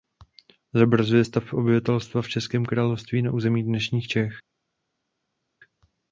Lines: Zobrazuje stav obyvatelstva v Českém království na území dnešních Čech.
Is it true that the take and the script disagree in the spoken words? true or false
false